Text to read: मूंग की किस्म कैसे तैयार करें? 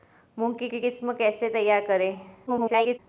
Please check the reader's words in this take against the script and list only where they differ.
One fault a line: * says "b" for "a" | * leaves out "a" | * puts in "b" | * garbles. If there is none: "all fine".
* puts in "की"
* garbles